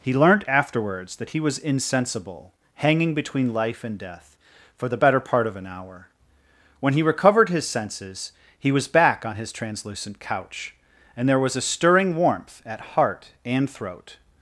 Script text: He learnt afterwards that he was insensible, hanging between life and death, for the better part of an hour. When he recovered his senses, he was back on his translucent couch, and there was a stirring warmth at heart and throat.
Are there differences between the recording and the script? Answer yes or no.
no